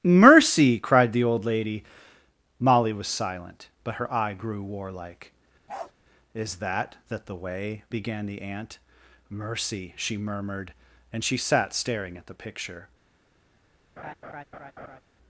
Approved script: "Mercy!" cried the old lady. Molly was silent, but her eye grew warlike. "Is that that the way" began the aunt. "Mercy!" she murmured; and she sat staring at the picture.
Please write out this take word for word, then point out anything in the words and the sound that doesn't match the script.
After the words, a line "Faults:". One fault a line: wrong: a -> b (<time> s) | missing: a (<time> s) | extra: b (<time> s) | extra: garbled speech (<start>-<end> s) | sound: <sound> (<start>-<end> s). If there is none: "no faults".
"Mercy!" cried the old lady. Molly was silent, but her eye grew warlike. "Is that that the way" began the aunt. "Mercy!" she murmured; and she sat staring at the picture.
Faults:
sound: bark (5.7-5.9 s)
sound: laugh (14.0-15.0 s)